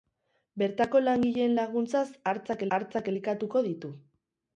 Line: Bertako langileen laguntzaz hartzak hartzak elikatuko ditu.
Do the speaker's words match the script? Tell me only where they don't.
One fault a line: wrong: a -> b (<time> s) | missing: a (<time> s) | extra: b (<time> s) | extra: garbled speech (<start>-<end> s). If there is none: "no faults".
no faults